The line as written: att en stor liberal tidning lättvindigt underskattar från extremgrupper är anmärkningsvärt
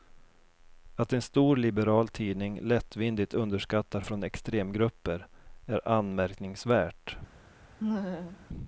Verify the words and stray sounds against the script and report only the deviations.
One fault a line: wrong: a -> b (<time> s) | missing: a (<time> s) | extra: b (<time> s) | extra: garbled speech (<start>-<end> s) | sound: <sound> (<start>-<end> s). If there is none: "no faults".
sound: laugh (7.8-8.5 s)